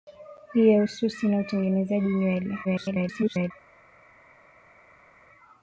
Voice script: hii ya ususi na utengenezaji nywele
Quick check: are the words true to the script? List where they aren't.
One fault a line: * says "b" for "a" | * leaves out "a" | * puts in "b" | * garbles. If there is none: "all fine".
* garbles